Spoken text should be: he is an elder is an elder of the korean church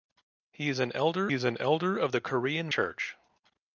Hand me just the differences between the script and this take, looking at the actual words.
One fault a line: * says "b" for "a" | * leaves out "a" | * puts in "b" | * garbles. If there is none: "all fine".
all fine